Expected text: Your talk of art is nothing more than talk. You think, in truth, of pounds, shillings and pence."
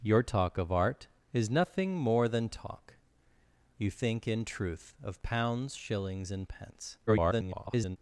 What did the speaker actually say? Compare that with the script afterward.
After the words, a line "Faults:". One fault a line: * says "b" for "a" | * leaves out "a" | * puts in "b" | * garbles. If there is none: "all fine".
Your talk of art is nothing more than talk. You think, in truth, of pounds, shillings and pence." [garbled]
Faults:
* garbles